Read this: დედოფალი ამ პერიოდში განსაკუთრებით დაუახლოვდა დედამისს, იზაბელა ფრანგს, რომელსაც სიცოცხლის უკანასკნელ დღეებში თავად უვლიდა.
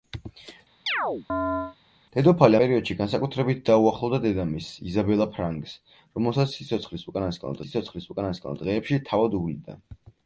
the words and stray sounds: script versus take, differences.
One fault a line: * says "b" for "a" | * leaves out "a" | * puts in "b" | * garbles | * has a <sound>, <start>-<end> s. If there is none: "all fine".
* has a chirp, 0.9-1.8 s
* leaves out "ამ"
* puts in "სიცოცხლის უკანასკნელ"